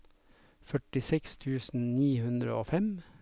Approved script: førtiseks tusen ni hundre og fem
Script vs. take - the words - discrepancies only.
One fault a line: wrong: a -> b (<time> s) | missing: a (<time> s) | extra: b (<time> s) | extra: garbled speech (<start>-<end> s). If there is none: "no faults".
no faults